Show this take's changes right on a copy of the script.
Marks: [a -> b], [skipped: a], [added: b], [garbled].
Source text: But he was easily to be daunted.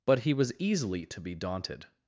But he was easily to be daunted.